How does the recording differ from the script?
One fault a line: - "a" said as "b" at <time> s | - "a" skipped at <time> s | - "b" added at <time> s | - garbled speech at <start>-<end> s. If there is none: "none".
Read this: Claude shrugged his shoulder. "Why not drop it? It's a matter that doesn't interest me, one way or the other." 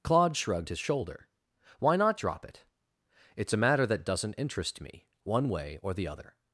none